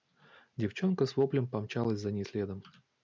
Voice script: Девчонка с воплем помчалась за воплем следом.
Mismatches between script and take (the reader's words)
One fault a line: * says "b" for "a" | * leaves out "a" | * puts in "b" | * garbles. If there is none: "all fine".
* says "ней" for "воплем"